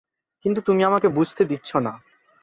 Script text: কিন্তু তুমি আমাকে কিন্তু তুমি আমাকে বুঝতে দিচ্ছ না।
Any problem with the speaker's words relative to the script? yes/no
yes